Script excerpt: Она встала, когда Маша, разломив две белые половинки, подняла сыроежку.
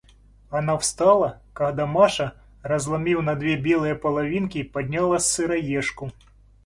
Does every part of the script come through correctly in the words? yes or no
no